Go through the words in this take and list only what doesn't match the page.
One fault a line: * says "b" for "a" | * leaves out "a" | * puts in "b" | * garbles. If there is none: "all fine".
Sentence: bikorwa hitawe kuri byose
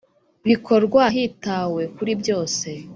all fine